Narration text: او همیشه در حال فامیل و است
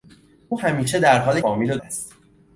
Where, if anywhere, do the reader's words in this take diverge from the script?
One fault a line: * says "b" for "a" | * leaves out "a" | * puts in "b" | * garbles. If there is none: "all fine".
all fine